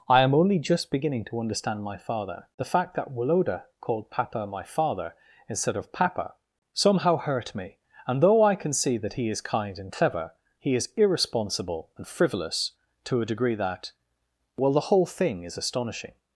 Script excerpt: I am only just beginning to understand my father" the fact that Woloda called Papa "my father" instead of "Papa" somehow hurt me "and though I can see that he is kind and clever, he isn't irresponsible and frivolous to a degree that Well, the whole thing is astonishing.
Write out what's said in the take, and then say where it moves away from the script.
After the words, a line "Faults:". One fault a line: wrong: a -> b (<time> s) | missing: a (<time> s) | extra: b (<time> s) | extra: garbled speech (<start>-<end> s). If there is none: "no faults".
I am only just beginning to understand my father" the fact that Woloda called Papa "my father" instead of "Papa" somehow hurt me "and though I can see that he is kind and clever, he is irresponsible and frivolous to a degree that Well, the whole thing is astonishing.
Faults:
wrong: isn't -> is (10.7 s)